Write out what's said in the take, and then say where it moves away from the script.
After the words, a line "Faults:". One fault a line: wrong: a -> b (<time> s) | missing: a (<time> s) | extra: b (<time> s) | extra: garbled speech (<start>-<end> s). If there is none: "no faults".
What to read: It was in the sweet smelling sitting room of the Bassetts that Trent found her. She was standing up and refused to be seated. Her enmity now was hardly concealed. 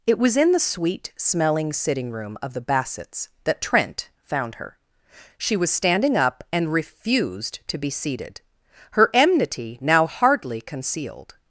It was in the sweet smelling sitting room of the Bassetts that Trent found her. She was standing up and refused to be seated. Her enmity now hardly concealed.
Faults:
missing: was (10.1 s)